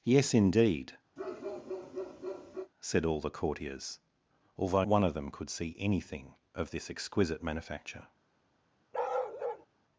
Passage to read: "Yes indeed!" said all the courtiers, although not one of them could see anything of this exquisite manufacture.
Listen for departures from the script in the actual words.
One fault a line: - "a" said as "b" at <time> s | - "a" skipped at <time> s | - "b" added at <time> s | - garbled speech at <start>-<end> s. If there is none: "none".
- "not" skipped at 4.9 s